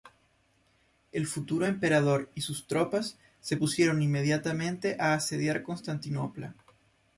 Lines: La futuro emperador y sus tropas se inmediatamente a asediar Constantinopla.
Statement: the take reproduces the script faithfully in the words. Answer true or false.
false